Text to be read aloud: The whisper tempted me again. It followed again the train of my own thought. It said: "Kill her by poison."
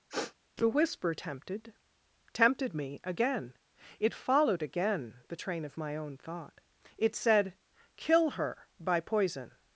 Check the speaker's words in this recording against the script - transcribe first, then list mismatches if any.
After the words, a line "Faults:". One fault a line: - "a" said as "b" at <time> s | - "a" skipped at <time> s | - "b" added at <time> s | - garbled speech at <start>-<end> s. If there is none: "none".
The whisper tempted tempted me again. It followed again the train of my own thought. It said: "Kill her by poison."
Faults:
- "tempted" added at 2.3 s